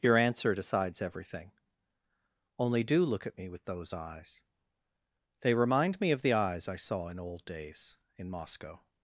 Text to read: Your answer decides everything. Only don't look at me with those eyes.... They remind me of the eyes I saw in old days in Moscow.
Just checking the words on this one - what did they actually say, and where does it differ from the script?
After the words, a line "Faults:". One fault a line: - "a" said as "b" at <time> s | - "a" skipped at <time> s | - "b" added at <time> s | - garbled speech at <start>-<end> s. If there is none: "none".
Your answer decides everything. Only do look at me with those eyes.... They remind me of the eyes I saw in old days in Moscow.
Faults:
- "don't" said as "do" at 2.8 s